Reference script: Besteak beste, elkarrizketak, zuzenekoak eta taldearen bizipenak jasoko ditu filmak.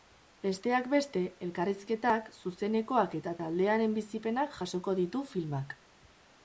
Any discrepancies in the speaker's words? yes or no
no